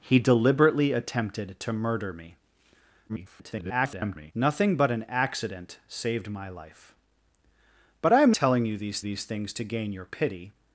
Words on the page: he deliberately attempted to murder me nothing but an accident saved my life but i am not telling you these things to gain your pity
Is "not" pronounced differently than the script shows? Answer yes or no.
yes